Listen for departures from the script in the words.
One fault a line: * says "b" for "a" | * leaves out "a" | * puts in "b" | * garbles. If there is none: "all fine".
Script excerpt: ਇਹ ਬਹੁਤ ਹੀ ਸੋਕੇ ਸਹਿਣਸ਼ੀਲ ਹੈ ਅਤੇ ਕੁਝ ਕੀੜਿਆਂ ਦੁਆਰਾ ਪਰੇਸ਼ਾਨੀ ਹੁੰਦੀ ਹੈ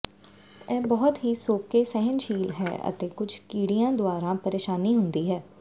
all fine